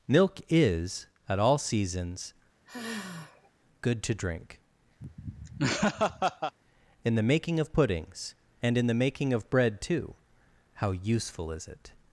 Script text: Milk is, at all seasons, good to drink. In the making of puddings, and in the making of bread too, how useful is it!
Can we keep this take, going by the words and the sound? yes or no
no